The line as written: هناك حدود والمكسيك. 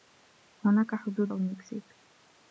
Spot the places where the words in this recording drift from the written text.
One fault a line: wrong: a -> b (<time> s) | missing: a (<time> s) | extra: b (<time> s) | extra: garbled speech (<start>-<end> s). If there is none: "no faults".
no faults